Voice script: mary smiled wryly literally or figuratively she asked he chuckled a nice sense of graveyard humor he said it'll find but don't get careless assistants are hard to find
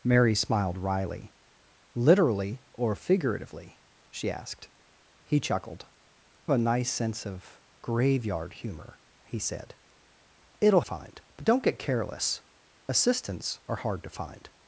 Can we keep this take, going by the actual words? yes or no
yes